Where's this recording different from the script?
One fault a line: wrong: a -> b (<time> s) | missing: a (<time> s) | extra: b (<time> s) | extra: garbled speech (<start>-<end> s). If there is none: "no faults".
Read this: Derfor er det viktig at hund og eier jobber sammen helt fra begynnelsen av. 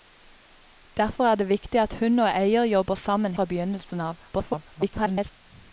missing: helt (3.4 s)
extra: garbled speech (4.3-5.3 s)